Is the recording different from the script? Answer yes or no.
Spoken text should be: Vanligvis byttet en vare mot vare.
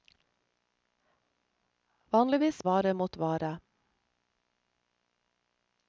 yes